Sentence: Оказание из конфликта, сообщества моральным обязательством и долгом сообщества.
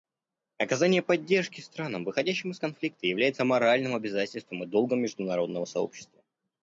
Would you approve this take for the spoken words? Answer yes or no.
no